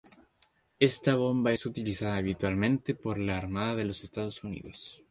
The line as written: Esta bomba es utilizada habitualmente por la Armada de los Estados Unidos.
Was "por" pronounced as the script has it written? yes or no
yes